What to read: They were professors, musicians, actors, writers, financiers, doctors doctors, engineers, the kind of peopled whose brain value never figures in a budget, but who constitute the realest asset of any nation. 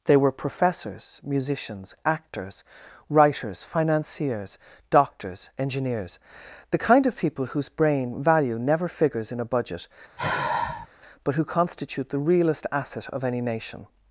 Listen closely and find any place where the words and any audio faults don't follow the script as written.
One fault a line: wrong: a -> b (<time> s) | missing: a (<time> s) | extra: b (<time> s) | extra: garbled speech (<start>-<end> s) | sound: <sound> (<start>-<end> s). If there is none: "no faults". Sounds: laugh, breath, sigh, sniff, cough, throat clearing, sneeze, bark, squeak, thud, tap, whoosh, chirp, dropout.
missing: doctors (5.5 s)
wrong: peopled -> people (7.2 s)
sound: sigh (10.2-10.9 s)